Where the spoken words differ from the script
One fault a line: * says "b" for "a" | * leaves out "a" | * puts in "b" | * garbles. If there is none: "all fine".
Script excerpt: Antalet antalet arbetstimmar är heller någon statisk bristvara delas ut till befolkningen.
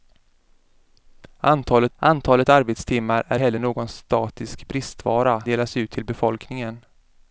all fine